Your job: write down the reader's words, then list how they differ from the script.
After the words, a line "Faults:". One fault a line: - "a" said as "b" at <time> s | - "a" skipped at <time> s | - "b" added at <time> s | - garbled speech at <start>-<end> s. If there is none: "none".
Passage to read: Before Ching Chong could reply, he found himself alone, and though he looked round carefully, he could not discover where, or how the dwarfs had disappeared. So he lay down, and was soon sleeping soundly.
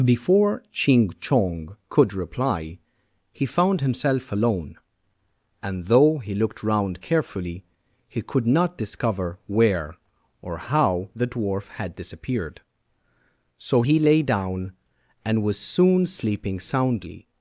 Before Ching Chong could reply, he found himself alone, and though he looked round carefully, he could not discover where, or how the dwarf had disappeared. So he lay down, and was soon sleeping soundly.
Faults:
- "dwarfs" said as "dwarf" at 11.3 s